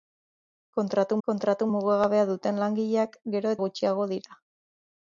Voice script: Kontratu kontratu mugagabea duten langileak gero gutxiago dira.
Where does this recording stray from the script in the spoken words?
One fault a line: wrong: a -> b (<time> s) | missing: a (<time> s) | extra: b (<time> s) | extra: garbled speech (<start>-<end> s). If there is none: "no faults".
no faults